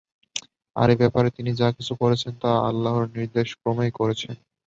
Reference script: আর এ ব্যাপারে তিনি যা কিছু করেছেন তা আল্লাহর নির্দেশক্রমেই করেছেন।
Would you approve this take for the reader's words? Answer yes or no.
yes